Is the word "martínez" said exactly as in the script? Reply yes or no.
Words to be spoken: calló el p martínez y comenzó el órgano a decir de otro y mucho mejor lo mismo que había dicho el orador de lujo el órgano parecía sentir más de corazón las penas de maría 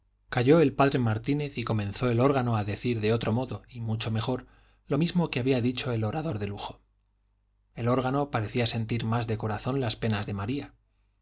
yes